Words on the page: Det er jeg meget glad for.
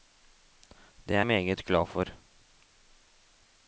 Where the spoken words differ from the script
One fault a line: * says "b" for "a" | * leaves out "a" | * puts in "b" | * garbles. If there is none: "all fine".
* leaves out "jeg"